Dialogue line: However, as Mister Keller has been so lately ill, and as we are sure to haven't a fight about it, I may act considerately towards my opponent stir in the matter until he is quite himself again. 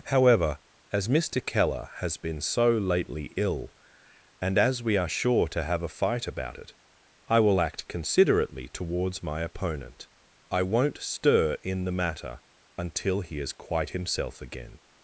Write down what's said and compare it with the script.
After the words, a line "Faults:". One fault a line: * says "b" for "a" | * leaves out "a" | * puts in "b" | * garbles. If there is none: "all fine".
However, as Mister Keller has been so lately ill, and as we are sure to have a fight about it, I will act considerately towards my opponent I won't stir in the matter until he is quite himself again.
Faults:
* says "have" for "haven't"
* says "will" for "may"
* puts in "I won't"